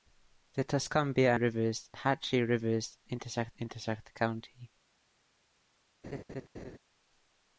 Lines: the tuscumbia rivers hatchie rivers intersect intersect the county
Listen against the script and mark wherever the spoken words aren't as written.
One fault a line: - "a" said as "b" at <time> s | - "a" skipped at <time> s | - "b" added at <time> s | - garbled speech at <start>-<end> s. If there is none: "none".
none